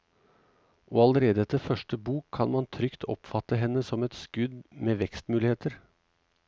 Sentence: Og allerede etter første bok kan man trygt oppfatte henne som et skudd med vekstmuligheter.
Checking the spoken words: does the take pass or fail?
pass